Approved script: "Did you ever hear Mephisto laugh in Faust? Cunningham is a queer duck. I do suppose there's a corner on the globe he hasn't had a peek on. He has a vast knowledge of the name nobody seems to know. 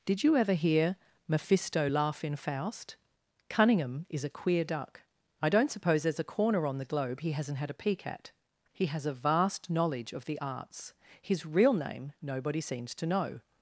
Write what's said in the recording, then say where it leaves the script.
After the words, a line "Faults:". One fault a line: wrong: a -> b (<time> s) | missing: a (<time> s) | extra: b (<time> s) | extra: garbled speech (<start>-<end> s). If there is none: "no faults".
"Did you ever hear Mephisto laugh in Faust? Cunningham is a queer duck. I don't suppose there's a corner on the globe he hasn't had a peek at. He has a vast knowledge of the arts. His real name nobody seems to know.
Faults:
wrong: do -> don't (5.5 s)
wrong: on -> at (8.1 s)
extra: arts His real (10.4 s)